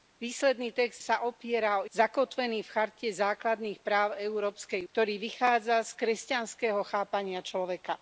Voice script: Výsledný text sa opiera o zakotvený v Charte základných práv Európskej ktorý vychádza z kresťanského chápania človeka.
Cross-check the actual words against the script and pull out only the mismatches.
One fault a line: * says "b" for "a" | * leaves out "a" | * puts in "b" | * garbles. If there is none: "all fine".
all fine